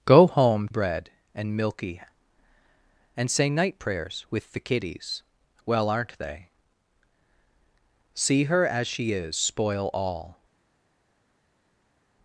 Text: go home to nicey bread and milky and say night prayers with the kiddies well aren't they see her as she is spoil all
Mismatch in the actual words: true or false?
true